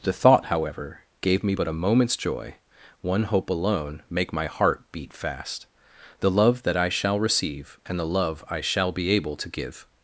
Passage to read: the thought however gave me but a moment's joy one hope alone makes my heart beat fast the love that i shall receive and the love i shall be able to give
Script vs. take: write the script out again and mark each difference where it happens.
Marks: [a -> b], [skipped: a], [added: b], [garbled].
the thought however gave me but a moment's joy one hope alone [makes -> make] my heart beat fast the love that i shall receive and the love i shall be able to give